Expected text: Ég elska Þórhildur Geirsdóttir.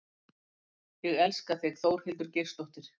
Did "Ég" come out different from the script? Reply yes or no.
no